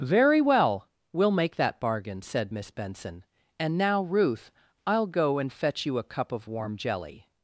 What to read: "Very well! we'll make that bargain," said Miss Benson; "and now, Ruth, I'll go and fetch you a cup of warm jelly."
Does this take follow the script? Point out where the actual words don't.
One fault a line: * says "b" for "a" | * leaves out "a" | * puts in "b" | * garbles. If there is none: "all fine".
all fine